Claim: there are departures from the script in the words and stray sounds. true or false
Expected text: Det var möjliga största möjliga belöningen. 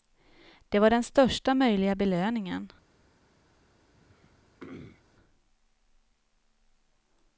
true